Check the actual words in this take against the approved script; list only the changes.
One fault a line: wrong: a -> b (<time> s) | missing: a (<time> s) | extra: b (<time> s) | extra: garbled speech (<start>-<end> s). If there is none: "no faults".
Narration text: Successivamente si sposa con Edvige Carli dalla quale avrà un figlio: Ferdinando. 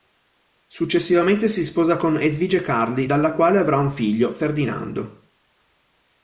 no faults